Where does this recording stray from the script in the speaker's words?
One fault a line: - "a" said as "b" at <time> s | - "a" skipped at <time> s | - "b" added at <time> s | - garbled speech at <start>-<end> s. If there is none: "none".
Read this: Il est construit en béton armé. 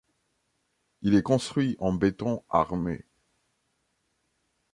none